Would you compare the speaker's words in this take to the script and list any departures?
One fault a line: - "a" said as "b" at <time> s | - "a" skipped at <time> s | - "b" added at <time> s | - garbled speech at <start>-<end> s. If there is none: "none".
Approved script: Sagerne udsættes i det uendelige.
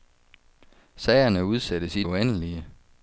- "det" skipped at 2.0 s